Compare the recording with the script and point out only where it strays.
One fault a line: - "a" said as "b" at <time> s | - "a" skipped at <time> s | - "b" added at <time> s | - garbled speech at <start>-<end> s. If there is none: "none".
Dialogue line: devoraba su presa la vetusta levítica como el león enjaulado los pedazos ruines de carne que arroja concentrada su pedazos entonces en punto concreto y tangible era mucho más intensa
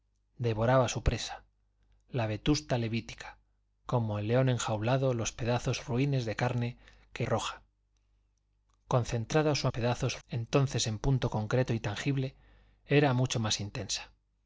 none